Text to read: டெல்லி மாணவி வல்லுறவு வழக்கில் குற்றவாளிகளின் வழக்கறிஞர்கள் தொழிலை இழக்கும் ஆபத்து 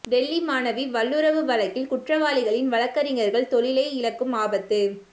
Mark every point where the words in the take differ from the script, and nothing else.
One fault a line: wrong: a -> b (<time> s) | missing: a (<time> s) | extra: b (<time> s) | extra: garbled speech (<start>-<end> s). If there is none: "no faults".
no faults